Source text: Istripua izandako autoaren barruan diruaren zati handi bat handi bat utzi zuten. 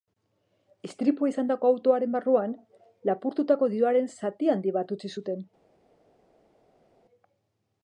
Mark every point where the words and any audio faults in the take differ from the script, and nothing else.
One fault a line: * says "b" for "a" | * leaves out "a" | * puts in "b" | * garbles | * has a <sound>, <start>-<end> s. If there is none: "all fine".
* puts in "lapurtutako"
* leaves out "handi bat"